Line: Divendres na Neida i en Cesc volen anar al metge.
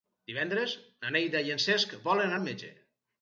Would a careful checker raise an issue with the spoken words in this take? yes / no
yes